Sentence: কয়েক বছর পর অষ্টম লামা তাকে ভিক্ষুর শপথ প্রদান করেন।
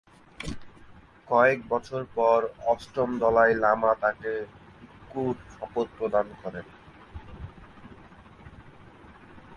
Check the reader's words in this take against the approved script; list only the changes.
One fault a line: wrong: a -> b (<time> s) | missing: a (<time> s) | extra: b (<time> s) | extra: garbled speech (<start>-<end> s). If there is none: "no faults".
extra: দলাই (3.2 s)